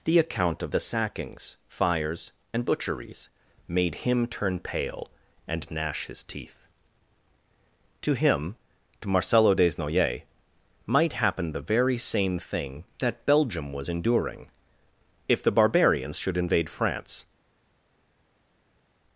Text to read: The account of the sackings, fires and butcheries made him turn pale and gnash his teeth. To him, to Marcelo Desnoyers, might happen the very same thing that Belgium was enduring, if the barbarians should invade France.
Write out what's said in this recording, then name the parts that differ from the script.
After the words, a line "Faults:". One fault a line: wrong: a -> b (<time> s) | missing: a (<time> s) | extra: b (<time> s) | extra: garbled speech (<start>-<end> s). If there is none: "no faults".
The account of the sackings, fires and butcheries made him turn pale and gnash his teeth. To him, to Marcelo Desnoyers, might happen the very same thing that Belgium was enduring, if the barbarians should invade France.
Faults:
no faults